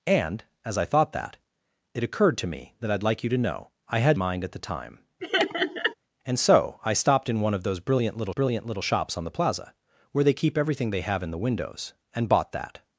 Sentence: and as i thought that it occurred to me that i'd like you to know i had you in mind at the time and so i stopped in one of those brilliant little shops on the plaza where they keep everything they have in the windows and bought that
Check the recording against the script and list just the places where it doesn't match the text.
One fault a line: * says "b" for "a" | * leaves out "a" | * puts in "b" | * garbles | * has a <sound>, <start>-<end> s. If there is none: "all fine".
* leaves out "you in"
* has a laugh, 5.2-5.9 s
* puts in "brilliant little"